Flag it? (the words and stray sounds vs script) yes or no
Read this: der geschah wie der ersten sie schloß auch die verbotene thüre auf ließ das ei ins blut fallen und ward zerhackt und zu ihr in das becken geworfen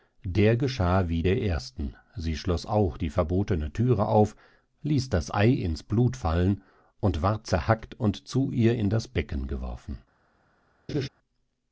yes